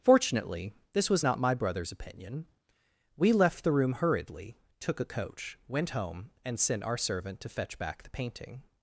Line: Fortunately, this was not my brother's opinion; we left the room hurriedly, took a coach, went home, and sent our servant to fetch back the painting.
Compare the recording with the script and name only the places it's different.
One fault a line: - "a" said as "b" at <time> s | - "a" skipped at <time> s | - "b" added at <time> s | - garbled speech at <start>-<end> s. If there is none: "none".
none